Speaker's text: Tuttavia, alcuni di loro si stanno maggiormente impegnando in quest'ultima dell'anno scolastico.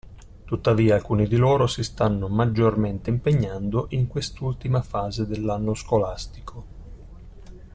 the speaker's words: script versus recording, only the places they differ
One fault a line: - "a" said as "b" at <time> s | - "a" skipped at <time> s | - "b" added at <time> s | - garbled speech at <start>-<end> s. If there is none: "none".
- "fase" added at 4.8 s